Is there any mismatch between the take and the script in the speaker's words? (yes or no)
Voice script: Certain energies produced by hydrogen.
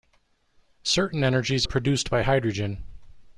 no